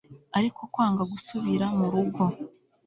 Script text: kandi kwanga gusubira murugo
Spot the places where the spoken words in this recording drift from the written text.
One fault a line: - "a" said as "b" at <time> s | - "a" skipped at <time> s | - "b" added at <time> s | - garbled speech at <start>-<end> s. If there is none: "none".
- "kandi" said as "ariko" at 0.4 s